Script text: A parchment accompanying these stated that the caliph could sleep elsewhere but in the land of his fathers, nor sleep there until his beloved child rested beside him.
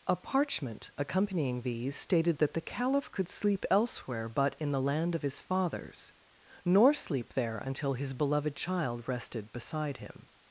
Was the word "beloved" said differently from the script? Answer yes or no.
no